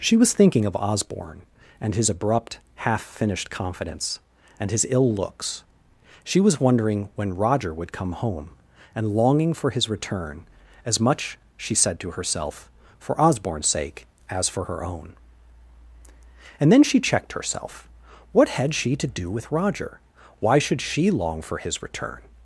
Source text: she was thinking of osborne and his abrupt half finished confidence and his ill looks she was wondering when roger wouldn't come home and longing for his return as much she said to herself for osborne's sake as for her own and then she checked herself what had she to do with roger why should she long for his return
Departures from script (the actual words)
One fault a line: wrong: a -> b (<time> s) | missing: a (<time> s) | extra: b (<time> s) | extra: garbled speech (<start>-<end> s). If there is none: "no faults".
wrong: wouldn't -> would (7.7 s)